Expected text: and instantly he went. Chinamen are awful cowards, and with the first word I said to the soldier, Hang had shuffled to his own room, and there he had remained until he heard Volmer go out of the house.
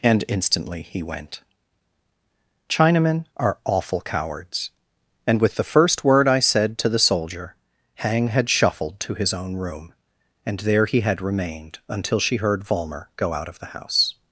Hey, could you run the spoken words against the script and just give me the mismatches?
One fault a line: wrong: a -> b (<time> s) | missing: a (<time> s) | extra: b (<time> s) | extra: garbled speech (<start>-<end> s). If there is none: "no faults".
wrong: he -> she (12.2 s)